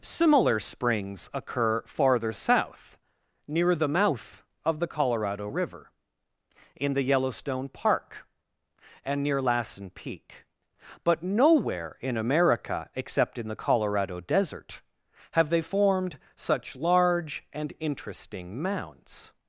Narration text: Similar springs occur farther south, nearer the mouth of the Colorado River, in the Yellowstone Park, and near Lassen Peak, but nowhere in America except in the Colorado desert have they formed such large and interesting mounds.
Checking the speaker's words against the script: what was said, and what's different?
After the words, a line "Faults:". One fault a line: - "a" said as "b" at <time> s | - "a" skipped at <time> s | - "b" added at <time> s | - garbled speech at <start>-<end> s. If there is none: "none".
Similar springs occur farther south, near the mouth of the Colorado River, in the Yellowstone Park, and near Lassen Peak, but nowhere in America except in the Colorado desert have they formed such large and interesting mounds.
Faults:
- "nearer" said as "near" at 3.5 s